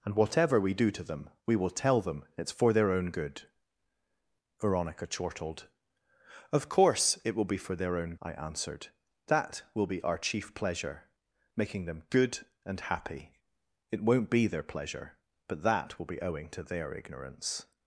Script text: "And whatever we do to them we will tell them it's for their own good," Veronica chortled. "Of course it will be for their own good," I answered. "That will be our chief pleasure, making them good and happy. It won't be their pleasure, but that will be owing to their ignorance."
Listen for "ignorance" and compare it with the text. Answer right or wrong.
right